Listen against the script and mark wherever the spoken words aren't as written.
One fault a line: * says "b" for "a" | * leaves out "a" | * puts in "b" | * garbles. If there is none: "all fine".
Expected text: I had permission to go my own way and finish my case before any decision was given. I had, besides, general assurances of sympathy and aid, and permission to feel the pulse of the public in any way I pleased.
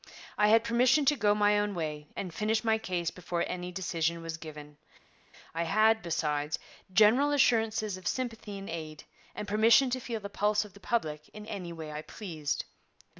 all fine